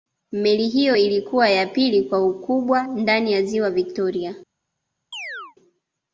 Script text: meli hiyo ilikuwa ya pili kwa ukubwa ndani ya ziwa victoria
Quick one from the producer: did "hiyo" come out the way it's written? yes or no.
yes